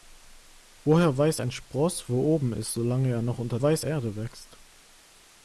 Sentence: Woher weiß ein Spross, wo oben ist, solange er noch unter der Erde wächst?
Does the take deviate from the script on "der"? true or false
true